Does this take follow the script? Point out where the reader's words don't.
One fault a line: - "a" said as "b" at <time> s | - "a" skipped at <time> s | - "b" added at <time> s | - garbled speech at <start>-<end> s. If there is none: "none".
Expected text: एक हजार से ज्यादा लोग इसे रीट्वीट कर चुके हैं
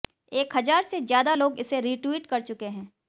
none